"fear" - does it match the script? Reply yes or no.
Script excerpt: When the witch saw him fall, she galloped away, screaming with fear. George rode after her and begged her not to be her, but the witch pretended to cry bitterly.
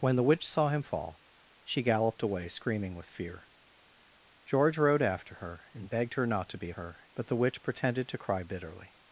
yes